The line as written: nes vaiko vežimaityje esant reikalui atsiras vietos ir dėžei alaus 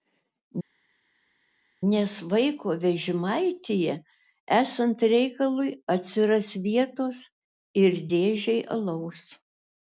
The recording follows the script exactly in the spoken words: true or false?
true